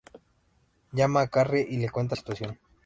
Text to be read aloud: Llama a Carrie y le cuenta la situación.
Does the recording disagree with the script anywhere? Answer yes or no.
yes